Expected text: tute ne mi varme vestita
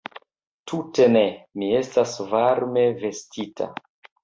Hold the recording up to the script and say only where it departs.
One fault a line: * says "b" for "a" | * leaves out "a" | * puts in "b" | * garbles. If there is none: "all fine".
* puts in "estas"